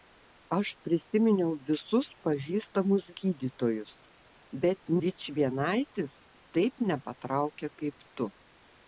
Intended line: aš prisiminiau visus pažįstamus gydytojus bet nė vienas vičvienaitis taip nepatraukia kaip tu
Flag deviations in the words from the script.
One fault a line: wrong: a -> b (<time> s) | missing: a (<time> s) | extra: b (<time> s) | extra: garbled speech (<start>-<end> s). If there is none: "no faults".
missing: nė vienas (4.9 s)